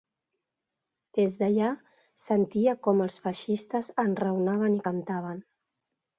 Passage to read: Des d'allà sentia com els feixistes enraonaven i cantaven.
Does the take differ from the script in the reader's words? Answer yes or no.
no